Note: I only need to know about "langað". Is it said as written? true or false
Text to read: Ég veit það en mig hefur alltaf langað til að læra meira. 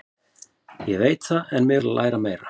false